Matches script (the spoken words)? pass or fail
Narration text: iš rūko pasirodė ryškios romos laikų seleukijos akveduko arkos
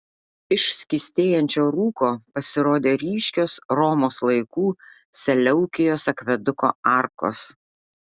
fail